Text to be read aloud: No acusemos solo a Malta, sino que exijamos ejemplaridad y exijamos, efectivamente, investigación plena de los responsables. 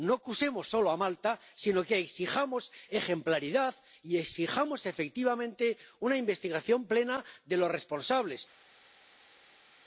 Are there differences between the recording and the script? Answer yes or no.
yes